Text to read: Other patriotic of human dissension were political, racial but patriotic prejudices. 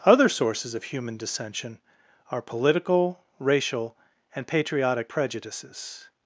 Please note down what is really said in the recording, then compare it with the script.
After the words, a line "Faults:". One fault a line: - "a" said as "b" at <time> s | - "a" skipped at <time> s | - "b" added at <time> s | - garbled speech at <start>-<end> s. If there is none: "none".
Other sources of human dissension are political, racial and patriotic prejudices.
Faults:
- "patriotic" said as "sources" at 0.3 s
- "were" said as "are" at 2.3 s
- "but" said as "and" at 4.3 s